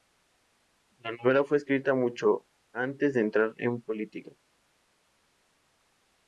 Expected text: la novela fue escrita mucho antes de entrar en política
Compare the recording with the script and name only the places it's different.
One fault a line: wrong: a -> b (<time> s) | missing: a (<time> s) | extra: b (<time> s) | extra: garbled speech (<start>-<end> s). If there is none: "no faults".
no faults